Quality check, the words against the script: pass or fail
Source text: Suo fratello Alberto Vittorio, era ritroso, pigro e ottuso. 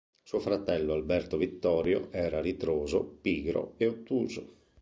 pass